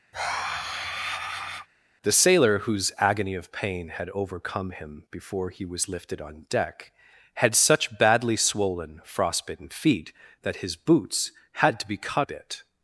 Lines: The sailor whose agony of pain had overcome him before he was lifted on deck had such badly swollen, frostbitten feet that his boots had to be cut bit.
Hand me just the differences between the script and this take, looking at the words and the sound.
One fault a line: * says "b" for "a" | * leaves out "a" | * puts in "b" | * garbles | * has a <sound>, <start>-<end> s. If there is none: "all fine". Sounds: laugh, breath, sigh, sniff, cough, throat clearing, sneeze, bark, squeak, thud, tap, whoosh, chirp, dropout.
* has a sigh, 0.1-1.7 s